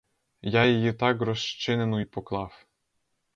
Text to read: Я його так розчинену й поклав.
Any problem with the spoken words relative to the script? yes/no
yes